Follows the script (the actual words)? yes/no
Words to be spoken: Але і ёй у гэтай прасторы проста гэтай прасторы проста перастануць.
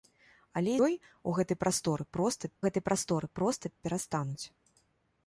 yes